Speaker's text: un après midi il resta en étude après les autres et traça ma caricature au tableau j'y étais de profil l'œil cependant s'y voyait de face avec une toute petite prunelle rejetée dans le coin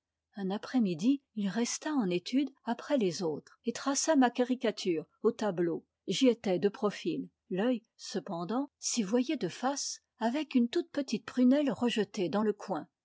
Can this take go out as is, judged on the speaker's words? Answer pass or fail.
pass